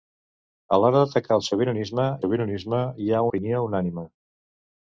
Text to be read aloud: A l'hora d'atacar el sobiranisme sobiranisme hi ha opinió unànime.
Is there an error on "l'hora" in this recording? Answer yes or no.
no